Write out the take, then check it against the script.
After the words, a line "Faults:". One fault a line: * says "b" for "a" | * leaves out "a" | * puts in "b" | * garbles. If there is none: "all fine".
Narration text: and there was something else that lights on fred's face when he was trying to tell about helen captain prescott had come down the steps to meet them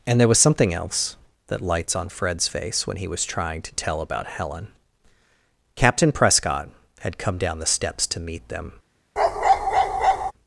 and there was something else that lights on fred's face when he was trying to tell about helen captain prescott had come down the steps to meet them
Faults:
all fine